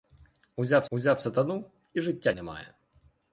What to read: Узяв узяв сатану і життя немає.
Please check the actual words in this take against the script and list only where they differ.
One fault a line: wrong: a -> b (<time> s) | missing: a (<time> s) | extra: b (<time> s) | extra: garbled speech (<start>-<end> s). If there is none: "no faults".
no faults